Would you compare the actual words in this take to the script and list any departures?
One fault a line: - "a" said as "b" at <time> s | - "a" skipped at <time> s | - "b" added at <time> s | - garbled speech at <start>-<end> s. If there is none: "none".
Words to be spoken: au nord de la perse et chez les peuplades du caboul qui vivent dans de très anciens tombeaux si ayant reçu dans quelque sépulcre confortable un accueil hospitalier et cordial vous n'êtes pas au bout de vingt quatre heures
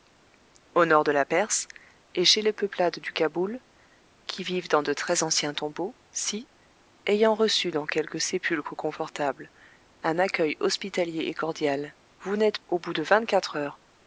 - "pas" skipped at 12.6 s